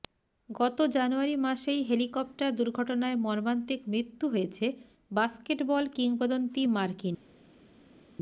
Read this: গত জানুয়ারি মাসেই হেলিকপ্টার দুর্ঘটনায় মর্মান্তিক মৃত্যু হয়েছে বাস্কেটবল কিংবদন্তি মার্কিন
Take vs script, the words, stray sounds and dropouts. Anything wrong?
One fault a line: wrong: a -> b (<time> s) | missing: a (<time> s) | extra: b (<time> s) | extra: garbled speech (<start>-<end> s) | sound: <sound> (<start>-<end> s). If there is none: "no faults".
no faults